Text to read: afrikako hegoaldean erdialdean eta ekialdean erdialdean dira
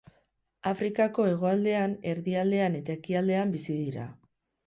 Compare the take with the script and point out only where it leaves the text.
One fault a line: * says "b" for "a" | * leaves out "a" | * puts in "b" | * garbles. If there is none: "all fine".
* says "bizi" for "erdialdean"